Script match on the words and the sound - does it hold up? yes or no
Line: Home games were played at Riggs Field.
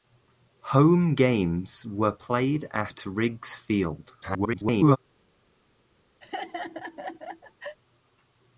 no